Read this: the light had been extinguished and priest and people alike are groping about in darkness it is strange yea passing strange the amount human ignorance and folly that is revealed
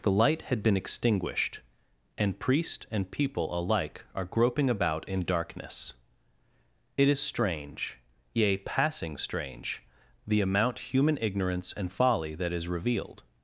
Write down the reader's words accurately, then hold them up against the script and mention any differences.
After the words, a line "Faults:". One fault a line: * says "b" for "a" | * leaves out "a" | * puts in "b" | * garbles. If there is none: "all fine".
the light had been extinguished and priest and people alike are groping about in darkness it is strange yea passing strange the amount human ignorance and folly that is revealed
Faults:
all fine